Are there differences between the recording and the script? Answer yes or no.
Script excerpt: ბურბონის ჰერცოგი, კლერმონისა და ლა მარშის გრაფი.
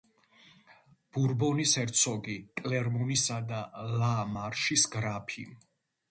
no